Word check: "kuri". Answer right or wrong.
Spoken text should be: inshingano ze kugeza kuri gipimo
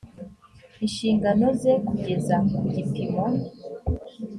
wrong